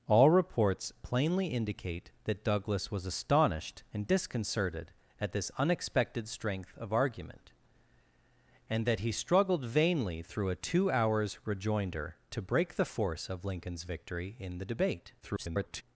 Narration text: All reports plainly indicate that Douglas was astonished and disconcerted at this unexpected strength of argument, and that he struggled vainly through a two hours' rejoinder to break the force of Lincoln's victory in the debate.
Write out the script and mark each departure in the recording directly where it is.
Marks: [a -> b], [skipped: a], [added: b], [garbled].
All reports plainly indicate that Douglas was astonished and disconcerted at this unexpected strength of argument, and that he struggled vainly through a two hours' rejoinder to break the force of Lincoln's victory in the debate. [garbled]